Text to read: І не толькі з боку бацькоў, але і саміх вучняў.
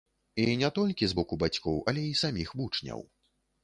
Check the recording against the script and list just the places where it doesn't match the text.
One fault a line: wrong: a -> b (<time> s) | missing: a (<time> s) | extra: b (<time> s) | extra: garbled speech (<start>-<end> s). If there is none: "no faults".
no faults